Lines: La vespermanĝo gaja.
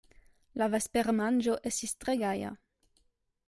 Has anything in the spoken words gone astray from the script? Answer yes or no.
yes